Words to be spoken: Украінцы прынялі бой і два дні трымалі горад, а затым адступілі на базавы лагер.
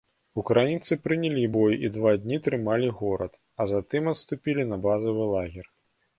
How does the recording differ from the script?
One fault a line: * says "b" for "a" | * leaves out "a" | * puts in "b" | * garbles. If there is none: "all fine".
all fine